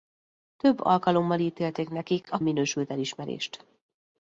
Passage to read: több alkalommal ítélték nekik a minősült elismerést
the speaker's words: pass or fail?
pass